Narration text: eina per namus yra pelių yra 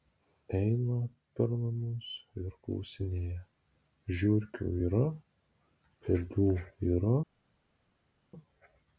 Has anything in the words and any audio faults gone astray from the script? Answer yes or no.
yes